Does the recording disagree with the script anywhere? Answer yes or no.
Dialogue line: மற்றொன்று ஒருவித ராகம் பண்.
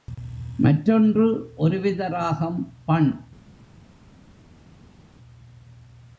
no